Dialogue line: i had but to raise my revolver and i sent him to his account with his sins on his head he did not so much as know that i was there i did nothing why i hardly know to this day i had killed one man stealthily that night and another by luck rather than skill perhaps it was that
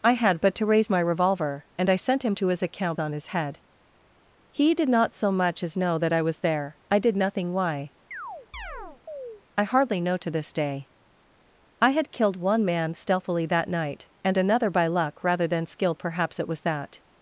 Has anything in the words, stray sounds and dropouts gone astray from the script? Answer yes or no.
yes